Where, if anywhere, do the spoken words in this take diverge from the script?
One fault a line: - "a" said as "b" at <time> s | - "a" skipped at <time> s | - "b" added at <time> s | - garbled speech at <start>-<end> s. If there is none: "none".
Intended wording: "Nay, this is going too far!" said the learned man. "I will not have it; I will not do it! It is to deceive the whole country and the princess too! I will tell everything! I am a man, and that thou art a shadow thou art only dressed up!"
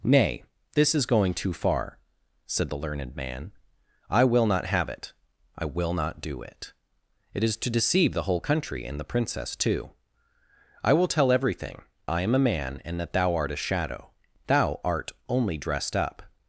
none